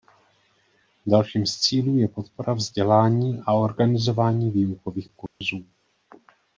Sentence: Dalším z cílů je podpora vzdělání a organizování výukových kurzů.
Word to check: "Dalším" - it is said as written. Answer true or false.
true